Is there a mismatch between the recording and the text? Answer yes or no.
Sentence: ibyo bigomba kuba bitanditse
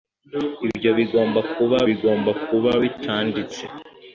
yes